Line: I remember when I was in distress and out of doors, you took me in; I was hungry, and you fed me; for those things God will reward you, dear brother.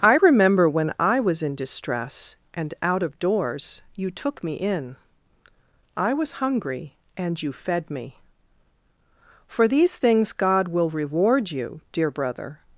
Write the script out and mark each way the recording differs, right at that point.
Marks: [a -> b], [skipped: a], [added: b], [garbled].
I remember when I was in distress and out of doors, you took me in; I was hungry, and you fed me; for [those -> these] things God will reward you, dear brother.